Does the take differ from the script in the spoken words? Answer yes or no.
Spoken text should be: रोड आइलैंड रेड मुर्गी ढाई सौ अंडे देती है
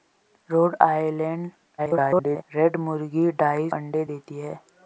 yes